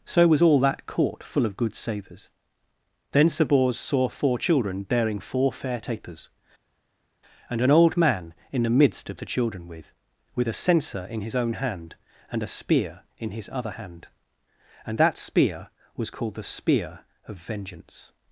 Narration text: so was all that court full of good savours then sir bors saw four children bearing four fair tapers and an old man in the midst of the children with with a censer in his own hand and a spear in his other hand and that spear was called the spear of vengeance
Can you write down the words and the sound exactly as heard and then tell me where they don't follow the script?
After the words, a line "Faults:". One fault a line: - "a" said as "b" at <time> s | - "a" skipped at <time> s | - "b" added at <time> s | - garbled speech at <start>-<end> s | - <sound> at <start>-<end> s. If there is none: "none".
so was all that court full of good savours then sir bors saw four children bearing four fair tapers and an old man in the midst of the children with with a censer in his own hand and a spear in his other hand and that spear was called the spear of vengeance
Faults:
none